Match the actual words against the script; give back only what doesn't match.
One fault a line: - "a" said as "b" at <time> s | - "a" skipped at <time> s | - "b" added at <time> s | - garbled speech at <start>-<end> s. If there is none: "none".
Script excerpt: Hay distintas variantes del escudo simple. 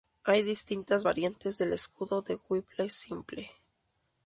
- "de Whipple" added at 2.2 s